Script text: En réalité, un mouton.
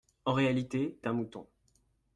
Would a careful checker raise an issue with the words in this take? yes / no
no